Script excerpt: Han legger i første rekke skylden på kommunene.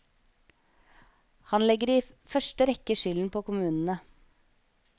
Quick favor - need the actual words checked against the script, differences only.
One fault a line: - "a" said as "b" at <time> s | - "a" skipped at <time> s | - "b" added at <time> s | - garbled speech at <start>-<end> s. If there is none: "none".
none